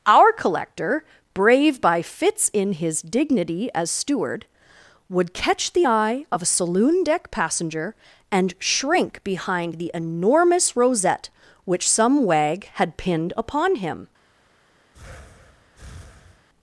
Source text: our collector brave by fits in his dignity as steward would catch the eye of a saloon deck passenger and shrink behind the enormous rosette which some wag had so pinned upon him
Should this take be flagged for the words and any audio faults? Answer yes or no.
yes